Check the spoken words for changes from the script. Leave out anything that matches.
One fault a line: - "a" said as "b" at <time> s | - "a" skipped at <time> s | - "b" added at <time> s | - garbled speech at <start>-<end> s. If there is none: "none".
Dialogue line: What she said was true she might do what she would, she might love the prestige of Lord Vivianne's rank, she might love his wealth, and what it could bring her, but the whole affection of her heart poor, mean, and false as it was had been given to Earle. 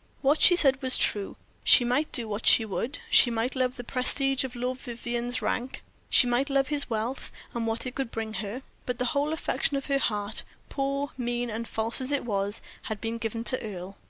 none